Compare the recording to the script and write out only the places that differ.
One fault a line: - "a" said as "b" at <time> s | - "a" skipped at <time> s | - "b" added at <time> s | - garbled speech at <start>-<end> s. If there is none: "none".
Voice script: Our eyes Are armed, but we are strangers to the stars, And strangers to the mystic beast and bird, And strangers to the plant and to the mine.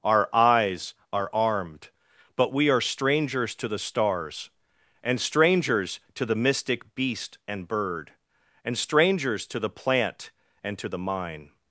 none